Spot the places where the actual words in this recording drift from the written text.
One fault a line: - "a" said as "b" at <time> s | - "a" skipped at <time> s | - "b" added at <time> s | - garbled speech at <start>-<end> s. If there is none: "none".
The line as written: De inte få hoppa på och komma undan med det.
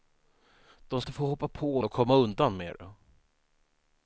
none